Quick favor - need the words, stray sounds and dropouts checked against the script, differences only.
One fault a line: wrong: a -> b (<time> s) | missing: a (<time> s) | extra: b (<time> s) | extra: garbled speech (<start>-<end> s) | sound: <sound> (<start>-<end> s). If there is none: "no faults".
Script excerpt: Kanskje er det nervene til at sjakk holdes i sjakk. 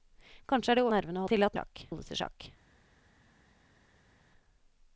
no faults